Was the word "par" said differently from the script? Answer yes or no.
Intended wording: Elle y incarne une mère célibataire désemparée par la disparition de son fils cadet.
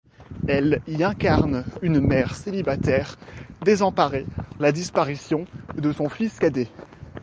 yes